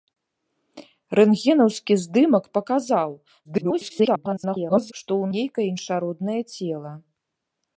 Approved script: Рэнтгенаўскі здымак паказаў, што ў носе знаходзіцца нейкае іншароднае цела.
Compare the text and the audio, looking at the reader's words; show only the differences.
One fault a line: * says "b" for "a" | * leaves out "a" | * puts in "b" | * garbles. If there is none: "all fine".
* garbles
* leaves out "носе знаходзіцца"